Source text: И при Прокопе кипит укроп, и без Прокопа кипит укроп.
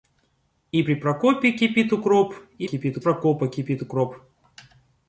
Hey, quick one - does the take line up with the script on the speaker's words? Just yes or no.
no